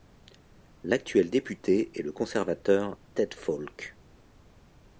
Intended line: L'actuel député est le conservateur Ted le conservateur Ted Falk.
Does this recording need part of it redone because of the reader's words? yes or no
yes